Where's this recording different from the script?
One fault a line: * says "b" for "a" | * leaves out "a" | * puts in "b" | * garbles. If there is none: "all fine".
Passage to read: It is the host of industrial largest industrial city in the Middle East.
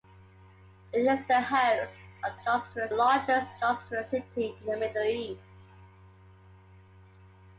all fine